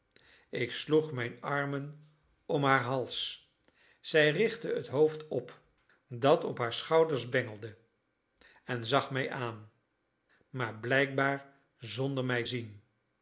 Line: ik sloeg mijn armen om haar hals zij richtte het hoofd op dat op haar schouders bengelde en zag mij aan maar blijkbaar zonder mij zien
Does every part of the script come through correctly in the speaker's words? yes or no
yes